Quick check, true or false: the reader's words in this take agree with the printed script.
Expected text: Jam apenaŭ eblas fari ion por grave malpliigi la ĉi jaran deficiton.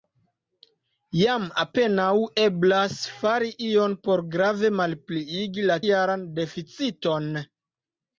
false